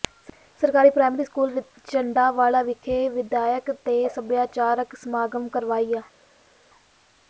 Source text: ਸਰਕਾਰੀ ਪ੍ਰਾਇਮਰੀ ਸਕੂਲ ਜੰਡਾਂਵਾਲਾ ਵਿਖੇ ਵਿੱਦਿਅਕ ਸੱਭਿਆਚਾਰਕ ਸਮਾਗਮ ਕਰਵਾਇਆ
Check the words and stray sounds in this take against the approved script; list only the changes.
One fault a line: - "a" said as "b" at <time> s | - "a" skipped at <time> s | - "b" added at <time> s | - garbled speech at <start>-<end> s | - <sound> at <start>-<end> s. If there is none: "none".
- "ਤੇ" added at 3.9 s